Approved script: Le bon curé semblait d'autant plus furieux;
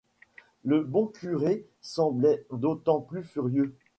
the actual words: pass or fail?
pass